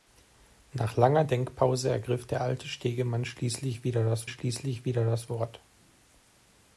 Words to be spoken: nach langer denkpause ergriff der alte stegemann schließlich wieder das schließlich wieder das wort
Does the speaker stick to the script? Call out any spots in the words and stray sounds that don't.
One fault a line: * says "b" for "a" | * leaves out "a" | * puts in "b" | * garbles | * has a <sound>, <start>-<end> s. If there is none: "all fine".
all fine